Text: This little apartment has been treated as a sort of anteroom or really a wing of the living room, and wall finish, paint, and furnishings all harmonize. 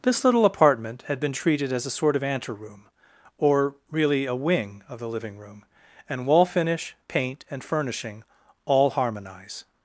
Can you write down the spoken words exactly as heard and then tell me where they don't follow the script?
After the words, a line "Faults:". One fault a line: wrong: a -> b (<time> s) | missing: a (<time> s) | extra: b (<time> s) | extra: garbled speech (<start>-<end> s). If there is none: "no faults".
This little apartment had been treated as a sort of anteroom or really a wing of the living room, and wall finish, paint, and furnishing all harmonize.
Faults:
wrong: has -> had (1.1 s)
wrong: furnishings -> furnishing (7.6 s)